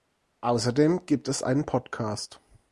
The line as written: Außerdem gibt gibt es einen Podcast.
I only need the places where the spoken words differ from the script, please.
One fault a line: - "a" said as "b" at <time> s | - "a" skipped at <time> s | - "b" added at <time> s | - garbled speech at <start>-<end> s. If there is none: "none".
- "gibt" skipped at 1.3 s